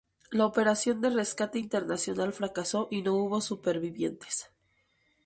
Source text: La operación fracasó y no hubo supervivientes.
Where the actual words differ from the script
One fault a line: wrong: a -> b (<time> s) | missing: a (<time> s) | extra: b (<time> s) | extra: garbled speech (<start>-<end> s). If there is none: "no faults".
extra: de rescate internacional (1.0 s)